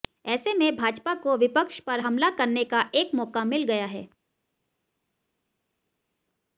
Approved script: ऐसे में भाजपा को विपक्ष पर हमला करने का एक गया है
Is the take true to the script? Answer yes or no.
no